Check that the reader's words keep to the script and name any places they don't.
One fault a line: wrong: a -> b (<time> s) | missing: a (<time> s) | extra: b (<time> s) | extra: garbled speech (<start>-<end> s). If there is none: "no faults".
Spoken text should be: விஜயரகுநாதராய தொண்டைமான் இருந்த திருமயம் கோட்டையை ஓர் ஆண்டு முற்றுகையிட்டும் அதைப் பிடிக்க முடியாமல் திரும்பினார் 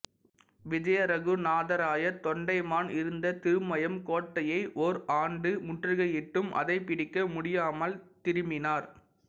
no faults